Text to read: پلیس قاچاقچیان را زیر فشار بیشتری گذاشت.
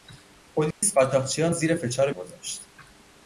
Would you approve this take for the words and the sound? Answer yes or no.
no